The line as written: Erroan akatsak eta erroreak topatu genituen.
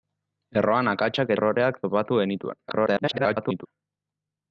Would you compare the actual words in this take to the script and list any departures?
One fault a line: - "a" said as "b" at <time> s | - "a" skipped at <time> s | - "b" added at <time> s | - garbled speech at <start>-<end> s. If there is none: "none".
- "eta" skipped at 1.3 s
- garbled speech at 2.7-3.7 s